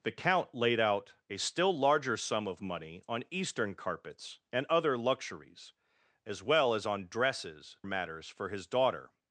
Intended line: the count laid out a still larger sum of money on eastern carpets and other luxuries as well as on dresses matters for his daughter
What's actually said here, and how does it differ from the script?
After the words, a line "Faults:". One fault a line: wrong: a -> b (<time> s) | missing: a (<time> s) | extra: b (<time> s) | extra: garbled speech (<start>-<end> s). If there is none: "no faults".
the count laid out a still larger sum of money on eastern carpets and other luxuries as well as on dresses matters for his daughter
Faults:
no faults